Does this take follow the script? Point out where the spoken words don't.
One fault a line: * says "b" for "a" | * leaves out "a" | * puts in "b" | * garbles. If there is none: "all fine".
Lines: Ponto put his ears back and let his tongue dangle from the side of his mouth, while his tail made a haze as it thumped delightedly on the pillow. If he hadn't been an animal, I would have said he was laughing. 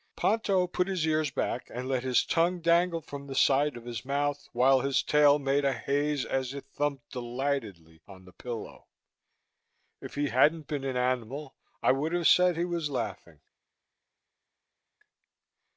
all fine